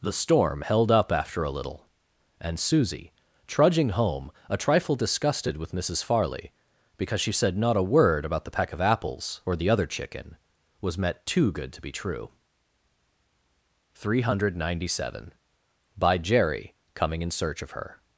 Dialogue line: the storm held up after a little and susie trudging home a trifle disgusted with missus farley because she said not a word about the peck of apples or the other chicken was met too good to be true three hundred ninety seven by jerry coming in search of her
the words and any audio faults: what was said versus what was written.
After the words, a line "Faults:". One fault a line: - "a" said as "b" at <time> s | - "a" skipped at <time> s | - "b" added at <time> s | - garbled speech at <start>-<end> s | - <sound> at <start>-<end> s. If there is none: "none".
the storm held up after a little and susie trudging home a trifle disgusted with missus farley because she said not a word about the peck of apples or the other chicken was met too good to be true three hundred ninety seven by jerry coming in search of her
Faults:
none